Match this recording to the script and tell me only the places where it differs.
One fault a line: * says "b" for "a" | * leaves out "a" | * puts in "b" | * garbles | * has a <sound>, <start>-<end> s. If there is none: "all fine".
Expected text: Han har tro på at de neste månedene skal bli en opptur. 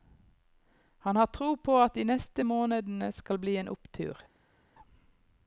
all fine